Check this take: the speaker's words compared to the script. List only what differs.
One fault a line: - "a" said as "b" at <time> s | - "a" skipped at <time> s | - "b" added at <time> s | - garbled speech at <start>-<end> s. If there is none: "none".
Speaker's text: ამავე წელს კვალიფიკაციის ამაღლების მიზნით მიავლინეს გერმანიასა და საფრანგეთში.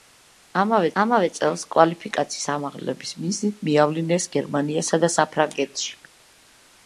- "ამავე" added at 1.0 s